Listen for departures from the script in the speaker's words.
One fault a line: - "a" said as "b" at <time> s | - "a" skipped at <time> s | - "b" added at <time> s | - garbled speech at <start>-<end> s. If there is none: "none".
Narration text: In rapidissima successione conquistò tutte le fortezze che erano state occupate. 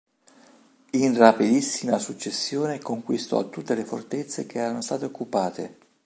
none